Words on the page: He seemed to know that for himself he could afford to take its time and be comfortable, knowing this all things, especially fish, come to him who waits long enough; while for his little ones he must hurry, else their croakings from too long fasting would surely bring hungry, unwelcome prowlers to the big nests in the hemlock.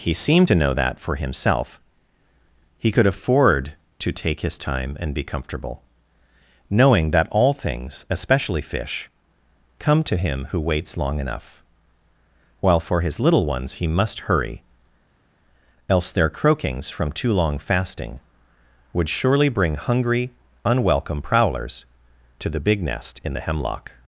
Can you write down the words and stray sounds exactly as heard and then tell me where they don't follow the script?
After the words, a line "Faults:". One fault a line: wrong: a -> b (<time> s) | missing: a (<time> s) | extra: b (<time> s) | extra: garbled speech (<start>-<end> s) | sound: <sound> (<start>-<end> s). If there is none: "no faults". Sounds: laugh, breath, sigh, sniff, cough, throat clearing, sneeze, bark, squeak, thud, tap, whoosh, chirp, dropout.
He seemed to know that for himself he could afford to take his time and be comfortable, knowing that all things, especially fish, come to him who waits long enough; while for his little ones he must hurry, else their croakings from too long fasting would surely bring hungry, unwelcome prowlers to the big nest in the hemlock.
Faults:
wrong: its -> his (4.4 s)
wrong: this -> that (7.1 s)
wrong: nests -> nest (22.8 s)